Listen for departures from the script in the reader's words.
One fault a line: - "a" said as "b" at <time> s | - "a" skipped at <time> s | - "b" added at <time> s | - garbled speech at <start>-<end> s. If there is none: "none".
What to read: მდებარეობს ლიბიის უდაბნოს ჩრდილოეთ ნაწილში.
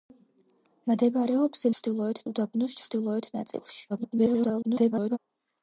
- "ლიბიის" said as "ჩრდილოეთ" at 1.8 s
- garbled speech at 3.9-5.2 s